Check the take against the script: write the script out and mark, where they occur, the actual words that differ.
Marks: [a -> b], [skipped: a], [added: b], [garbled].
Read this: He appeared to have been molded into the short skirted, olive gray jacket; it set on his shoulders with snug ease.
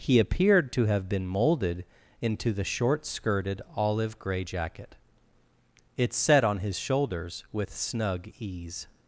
He appeared to have been molded into the short skirted, olive gray jacket; it set on his shoulders with snug ease.